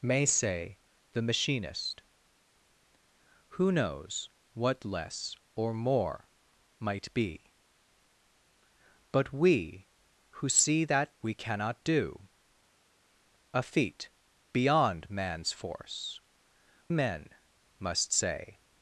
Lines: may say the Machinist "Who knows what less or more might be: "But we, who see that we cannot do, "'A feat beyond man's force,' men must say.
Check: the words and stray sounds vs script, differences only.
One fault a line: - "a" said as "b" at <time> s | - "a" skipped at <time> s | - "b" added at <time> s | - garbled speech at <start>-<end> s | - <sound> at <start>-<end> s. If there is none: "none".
none